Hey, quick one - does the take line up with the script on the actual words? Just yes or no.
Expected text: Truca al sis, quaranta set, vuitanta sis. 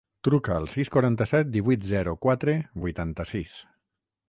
no